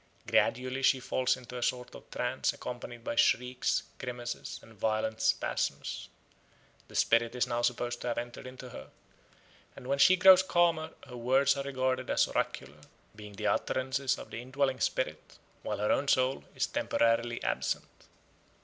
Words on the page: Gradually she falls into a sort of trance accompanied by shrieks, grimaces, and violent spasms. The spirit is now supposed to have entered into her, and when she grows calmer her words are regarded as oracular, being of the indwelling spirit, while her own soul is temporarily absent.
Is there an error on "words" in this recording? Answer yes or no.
no